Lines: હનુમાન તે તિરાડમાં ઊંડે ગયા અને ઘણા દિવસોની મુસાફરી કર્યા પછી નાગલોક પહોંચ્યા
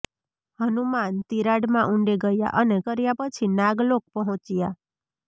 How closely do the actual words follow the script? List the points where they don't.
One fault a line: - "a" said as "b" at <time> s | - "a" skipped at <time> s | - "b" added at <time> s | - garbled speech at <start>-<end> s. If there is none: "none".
- "તે" skipped at 1.2 s
- "ઘણા દિવસોની મુસાફરી" skipped at 2.8 s